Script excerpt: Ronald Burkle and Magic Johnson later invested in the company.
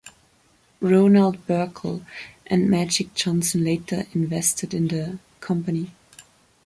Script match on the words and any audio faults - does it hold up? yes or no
yes